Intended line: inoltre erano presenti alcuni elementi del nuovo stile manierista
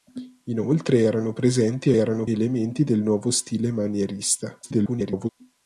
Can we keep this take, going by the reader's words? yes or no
no